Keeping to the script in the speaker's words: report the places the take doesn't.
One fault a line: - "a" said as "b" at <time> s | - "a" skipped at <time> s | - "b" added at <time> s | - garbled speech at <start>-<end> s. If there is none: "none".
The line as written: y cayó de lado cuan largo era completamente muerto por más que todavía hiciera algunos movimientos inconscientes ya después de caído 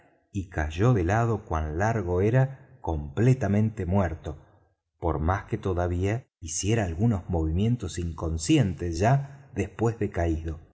none